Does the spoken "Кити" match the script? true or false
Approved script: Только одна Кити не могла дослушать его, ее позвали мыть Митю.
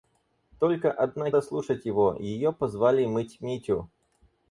false